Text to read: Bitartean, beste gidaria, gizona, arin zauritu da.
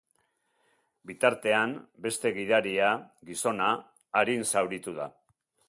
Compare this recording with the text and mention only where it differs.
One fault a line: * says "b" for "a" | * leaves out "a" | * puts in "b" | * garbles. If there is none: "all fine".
all fine